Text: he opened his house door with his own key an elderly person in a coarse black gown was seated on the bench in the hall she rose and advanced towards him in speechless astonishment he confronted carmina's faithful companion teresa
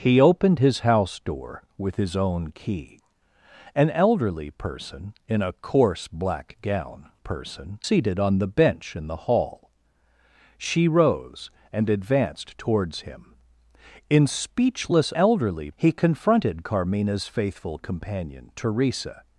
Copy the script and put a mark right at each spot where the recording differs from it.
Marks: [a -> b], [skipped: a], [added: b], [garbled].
he opened his house door with his own key an elderly person in a coarse black gown [was -> person] seated on the bench in the hall she rose and advanced towards him in speechless [astonishment -> elderly] he confronted carmina's faithful companion teresa